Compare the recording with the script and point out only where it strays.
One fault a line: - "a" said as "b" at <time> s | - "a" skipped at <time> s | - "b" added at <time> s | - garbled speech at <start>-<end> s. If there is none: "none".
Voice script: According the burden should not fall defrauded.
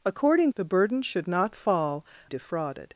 none